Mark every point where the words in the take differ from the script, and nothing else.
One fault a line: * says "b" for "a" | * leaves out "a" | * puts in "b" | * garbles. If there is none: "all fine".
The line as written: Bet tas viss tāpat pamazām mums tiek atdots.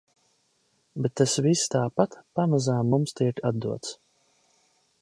all fine